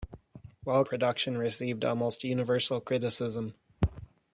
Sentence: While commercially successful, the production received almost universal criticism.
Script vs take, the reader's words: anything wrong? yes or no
yes